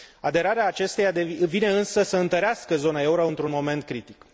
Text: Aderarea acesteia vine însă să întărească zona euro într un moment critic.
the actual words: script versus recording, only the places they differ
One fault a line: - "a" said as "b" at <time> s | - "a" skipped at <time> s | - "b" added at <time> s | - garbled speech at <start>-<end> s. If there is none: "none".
none